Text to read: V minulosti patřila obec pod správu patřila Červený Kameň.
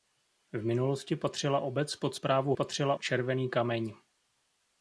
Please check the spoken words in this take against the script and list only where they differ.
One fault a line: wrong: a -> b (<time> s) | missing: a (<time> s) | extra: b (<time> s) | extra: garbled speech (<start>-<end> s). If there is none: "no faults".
no faults